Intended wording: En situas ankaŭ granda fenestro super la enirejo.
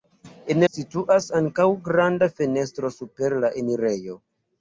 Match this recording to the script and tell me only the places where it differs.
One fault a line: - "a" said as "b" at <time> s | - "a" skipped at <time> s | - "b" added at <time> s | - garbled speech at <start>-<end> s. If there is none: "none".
none